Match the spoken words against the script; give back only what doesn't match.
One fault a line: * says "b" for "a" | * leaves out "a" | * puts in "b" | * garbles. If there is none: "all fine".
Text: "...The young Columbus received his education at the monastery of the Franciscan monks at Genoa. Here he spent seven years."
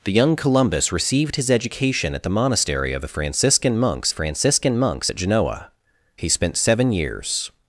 * puts in "Franciscan monks"
* leaves out "Here"